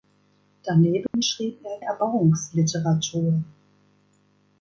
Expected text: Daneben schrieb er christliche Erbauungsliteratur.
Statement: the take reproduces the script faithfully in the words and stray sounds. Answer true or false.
false